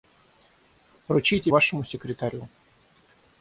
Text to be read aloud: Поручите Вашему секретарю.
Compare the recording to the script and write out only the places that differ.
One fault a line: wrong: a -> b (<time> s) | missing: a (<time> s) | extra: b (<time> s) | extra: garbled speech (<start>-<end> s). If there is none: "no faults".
no faults